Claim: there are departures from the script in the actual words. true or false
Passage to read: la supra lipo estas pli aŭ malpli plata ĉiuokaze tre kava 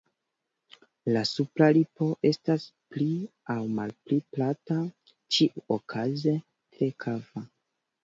false